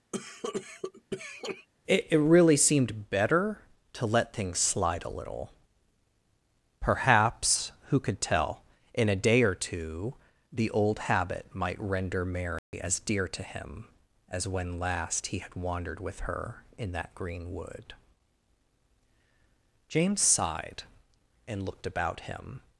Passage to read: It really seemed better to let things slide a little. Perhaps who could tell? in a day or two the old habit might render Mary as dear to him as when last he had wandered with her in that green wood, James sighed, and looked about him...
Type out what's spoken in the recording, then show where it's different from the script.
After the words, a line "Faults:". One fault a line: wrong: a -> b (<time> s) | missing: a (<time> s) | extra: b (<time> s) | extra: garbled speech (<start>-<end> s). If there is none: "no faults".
It it really seemed better to let things slide a little. Perhaps who could tell? in a day or two the old habit might render Mary as dear to him as when last he had wandered with her in that green wood, James sighed, and looked about him...
Faults:
extra: it (2.1 s)